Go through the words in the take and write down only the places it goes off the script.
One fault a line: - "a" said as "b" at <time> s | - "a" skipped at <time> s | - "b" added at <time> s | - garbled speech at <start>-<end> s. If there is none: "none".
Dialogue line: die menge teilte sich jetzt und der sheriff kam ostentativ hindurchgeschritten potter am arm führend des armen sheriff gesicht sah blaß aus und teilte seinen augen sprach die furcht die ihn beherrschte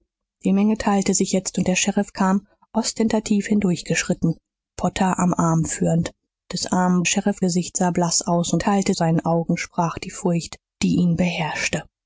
none